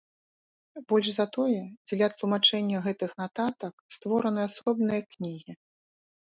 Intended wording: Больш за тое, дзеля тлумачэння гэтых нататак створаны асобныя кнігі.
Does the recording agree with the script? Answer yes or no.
yes